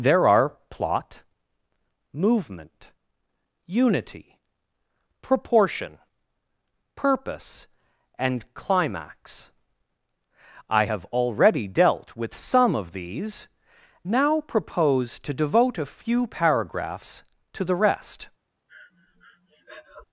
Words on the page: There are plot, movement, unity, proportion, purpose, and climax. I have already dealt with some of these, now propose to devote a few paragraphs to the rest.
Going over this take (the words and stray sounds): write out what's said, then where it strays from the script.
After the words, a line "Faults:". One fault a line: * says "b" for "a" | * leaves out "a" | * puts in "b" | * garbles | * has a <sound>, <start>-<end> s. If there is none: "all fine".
There are plot, movement, unity, proportion, purpose, and climax. I have already dealt with some of these, now propose to devote a few paragraphs to the rest.
Faults:
* has a breath, 18.7-20.0 s